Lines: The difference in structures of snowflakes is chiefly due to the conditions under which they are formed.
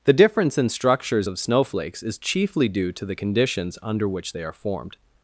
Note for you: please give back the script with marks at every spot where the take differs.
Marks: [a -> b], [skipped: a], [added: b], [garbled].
The difference in structures of snowflakes is chiefly due to the conditions under which they are formed.